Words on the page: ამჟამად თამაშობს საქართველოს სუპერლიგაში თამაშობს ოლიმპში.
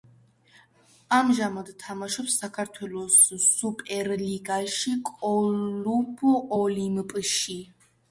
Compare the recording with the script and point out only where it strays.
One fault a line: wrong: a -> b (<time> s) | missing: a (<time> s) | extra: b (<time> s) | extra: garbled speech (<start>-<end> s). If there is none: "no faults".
wrong: თამაშობს -> კლუბ (5.1 s)